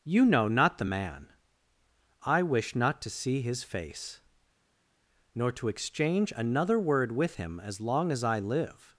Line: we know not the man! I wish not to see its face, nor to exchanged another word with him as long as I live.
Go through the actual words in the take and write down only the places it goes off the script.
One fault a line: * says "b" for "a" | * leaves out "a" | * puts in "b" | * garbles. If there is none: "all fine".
* says "you" for "we"
* says "his" for "its"
* says "exchange" for "exchanged"